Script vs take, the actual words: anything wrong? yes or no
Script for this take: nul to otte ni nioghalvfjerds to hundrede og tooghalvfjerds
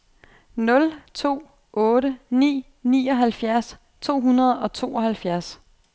no